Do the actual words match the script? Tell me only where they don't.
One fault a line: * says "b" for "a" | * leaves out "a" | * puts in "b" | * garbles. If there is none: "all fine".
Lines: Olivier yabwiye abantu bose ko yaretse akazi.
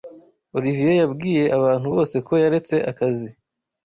all fine